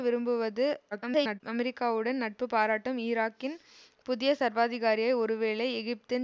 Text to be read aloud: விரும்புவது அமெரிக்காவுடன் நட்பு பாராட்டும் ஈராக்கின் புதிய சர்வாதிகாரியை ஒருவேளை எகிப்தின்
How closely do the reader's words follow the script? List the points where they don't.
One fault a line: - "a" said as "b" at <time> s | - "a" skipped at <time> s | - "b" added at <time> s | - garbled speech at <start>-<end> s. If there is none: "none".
- garbled speech at 0.9-1.4 s